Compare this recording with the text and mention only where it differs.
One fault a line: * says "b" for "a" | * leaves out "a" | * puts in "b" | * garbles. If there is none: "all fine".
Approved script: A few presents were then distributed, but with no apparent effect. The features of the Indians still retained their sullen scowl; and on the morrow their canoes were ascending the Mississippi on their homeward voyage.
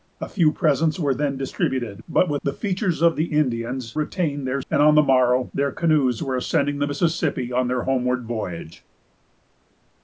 * leaves out "no apparent effect"
* leaves out "still"
* leaves out "sullen scowl"